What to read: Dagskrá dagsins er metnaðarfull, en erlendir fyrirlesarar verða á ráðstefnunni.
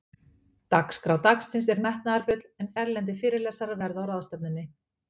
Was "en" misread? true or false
false